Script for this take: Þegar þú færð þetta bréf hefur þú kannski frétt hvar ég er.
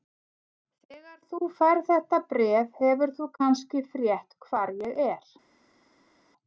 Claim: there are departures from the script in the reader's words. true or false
false